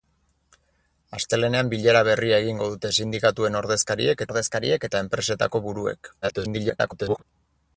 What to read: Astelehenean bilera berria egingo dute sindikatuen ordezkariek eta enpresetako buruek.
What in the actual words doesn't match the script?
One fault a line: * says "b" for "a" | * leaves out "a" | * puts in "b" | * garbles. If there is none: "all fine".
* puts in "ordezkariek"
* garbles